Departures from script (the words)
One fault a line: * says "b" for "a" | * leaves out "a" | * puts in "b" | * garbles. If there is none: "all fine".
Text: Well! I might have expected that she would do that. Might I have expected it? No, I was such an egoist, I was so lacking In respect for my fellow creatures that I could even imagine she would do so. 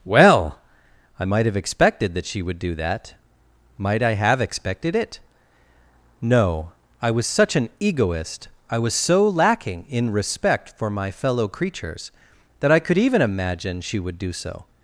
all fine